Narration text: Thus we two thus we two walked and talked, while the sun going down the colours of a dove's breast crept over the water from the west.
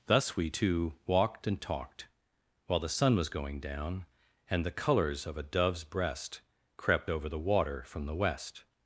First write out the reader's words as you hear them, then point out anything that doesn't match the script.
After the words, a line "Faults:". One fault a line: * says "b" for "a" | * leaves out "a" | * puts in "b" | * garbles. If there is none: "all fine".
Thus we two walked and talked, while the sun was going down and the colours of a dove's breast crept over the water from the west.
Faults:
* leaves out "thus we two"
* puts in "was"
* puts in "and"